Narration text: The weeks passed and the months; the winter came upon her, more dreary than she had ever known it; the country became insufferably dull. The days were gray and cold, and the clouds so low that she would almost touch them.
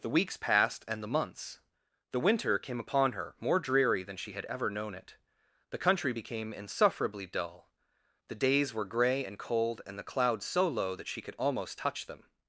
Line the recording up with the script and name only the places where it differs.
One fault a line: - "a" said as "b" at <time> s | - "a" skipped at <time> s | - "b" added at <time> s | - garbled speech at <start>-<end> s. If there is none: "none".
- "would" said as "could" at 11.2 s